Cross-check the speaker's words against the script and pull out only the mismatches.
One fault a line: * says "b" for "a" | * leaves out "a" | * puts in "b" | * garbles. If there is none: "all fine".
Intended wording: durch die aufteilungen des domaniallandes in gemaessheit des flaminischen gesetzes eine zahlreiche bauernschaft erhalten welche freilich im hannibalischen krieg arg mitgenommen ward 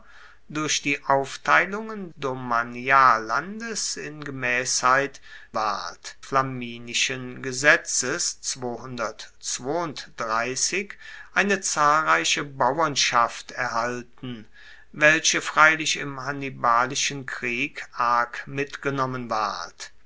* leaves out "des"
* says "ward" for "des"